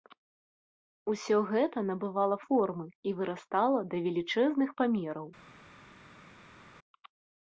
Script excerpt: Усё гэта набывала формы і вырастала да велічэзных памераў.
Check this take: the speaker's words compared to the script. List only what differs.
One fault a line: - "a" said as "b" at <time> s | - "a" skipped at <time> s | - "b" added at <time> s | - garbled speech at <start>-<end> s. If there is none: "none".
none